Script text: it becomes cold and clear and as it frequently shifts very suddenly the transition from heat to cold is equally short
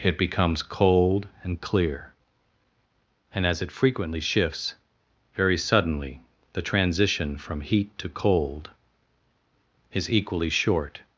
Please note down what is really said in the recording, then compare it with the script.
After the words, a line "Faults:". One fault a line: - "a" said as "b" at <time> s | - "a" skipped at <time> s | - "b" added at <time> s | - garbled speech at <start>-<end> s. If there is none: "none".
it becomes cold and clear and as it frequently shifts very suddenly the transition from heat to cold is equally short
Faults:
none